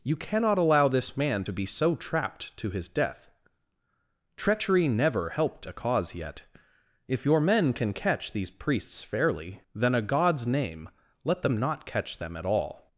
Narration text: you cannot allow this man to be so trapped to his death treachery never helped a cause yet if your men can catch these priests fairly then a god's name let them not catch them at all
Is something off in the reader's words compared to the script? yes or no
no